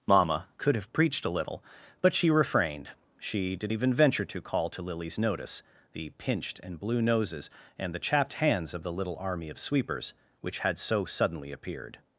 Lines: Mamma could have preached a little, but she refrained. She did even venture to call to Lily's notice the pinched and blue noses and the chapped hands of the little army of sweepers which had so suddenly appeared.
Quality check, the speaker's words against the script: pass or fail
pass